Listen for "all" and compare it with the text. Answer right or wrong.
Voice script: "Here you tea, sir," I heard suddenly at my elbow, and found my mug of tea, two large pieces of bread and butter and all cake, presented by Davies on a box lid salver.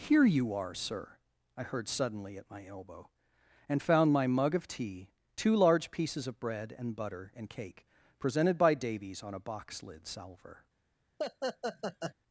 wrong